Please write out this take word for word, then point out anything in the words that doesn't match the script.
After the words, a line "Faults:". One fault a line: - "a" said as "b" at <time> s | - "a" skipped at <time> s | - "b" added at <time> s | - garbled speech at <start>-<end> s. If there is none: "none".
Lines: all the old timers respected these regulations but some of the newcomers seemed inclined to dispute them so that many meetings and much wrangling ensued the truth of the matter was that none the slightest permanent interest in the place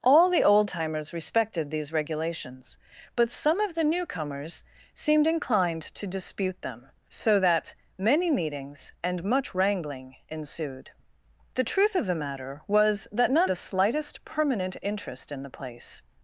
all the old timers respected these regulations but some of the newcomers seemed inclined to dispute them so that many meetings and much wrangling ensued the truth of the matter was that none the slightest permanent interest in the place
Faults:
none